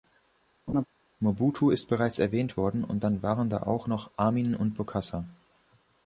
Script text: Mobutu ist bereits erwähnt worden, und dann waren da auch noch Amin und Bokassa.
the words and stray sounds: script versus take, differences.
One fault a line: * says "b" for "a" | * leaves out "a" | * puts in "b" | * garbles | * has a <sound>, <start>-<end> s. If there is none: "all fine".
* has a laugh, 0.7-0.9 s